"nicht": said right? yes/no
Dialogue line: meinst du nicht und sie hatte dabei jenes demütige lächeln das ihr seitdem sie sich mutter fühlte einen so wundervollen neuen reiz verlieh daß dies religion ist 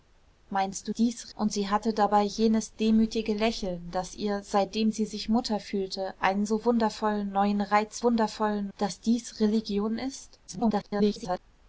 no